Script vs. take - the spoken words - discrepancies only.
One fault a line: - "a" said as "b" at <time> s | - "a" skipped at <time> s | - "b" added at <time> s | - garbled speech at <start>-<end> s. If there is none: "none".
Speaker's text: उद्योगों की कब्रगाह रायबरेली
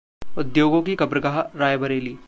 none